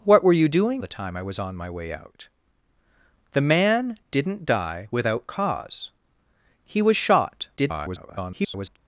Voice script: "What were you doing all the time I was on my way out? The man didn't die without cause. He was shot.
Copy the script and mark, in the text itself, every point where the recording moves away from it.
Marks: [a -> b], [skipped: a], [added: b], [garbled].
"What were you doing [skipped: all] the time I was on my way out? The man didn't die without cause. He was shot. [garbled]